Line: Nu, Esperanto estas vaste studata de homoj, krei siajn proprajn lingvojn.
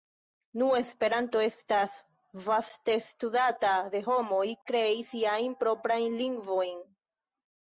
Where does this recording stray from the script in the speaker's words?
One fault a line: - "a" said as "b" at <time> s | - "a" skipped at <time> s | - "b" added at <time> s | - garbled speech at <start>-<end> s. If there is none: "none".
none